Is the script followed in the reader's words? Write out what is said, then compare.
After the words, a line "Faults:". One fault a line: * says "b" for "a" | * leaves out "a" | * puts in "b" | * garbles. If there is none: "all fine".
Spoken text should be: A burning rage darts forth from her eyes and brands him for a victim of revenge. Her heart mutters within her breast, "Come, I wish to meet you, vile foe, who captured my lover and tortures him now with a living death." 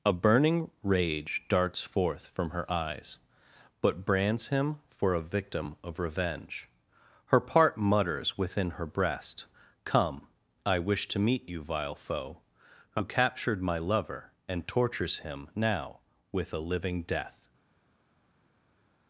A burning rage darts forth from her eyes but brands him for a victim of revenge. Her part mutters within her breast, "Come, I wish to meet you, vile foe, who captured my lover and tortures him now with a living death."
Faults:
* says "but" for "and"
* says "part" for "heart"